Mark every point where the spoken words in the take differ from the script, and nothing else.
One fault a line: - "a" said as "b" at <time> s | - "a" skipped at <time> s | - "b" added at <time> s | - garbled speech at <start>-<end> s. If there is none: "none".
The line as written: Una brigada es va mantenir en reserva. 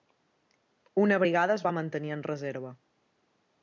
none